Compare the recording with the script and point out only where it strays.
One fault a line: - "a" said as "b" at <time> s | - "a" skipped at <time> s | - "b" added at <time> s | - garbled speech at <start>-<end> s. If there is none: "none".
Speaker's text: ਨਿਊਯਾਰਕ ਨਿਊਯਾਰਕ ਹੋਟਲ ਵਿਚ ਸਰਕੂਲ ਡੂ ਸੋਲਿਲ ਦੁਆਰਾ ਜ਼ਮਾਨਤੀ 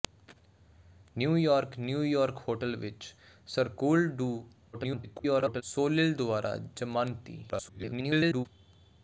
- garbled speech at 4.7-5.6 s
- garbled speech at 7.5-8.5 s